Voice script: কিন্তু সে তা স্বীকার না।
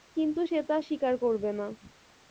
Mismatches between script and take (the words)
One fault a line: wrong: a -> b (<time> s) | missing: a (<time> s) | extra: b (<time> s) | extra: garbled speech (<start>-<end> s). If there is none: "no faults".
extra: করবে (1.2 s)